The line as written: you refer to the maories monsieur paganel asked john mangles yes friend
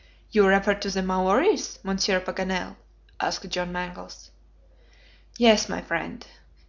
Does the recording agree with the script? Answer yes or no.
no